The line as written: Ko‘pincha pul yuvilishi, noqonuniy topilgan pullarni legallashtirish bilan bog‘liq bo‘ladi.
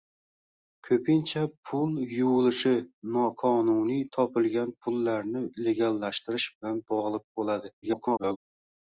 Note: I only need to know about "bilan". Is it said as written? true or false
true